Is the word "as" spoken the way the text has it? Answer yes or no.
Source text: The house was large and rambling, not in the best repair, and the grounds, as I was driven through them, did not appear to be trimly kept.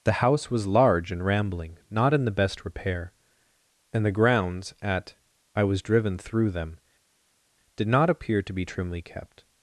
no